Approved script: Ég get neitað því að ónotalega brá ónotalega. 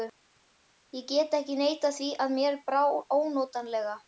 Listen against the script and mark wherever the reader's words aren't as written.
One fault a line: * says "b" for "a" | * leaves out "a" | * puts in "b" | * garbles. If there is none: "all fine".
* puts in "ekki"
* says "mér" for "ónotalega"